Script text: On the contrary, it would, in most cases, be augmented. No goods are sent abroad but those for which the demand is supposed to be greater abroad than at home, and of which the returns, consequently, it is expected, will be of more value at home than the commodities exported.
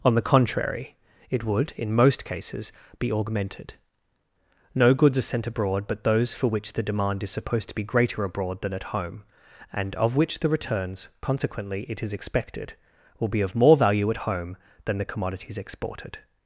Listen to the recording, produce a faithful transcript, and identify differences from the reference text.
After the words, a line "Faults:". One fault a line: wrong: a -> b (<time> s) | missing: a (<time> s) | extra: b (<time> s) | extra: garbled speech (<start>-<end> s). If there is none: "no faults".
On the contrary, it would, in most cases, be augmented. No goods are sent abroad but those for which the demand is supposed to be greater abroad than at home, and of which the returns, consequently, it is expected, will be of more value at home than the commodities exported.
Faults:
no faults